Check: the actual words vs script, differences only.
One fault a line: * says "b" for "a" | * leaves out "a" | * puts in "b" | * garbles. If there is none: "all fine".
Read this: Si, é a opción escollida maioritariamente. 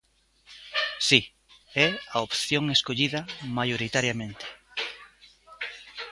all fine